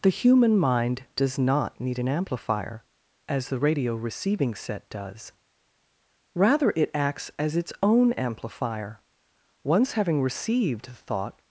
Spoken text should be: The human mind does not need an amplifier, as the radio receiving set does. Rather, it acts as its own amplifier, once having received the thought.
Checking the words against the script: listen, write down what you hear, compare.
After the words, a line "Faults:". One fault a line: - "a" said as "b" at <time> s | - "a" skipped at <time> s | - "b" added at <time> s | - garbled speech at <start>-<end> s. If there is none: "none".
The human mind does not need an amplifier, as the radio receiving set does. Rather, it acts as its own amplifier, once having received the thought.
Faults:
none